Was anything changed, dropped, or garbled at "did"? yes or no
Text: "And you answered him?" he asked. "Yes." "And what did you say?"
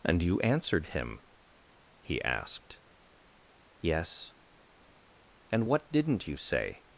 yes